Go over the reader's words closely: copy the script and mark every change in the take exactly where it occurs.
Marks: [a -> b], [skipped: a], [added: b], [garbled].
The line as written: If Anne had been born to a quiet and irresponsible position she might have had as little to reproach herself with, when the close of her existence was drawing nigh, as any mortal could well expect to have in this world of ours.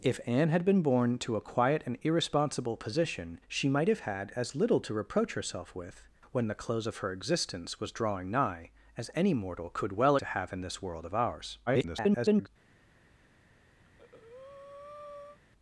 If Anne had been born to a quiet and irresponsible position she might have had as little to reproach herself with, when the close of her existence was drawing nigh, as any mortal could well [skipped: expect] to have in this world of ours. [garbled]